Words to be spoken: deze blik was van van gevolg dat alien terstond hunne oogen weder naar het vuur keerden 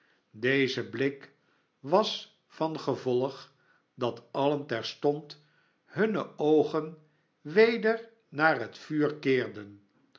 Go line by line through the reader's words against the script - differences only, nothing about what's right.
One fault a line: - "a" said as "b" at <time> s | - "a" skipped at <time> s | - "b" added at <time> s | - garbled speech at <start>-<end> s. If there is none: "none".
- "van" skipped at 2.8 s